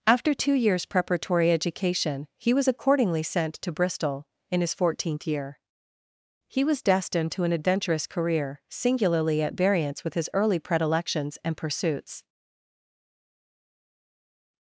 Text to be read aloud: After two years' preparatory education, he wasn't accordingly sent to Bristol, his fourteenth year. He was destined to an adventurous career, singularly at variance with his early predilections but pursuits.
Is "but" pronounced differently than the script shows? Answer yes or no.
yes